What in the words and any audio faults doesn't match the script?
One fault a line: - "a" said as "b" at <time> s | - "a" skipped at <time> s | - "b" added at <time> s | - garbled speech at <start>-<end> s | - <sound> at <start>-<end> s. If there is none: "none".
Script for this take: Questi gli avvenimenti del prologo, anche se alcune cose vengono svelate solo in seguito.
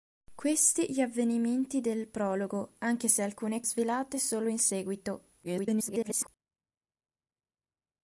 - "cose vengono" skipped at 3.6 s
- garbled speech at 5.4-6.3 s